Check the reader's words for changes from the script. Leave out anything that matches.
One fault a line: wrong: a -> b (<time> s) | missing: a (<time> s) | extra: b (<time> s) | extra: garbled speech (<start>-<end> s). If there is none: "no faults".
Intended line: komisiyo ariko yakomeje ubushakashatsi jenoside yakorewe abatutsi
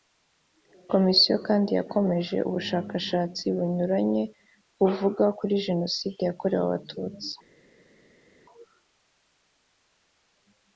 wrong: ariko -> kandi (1.5 s)
extra: bunyuranye buvuga kuri (3.6 s)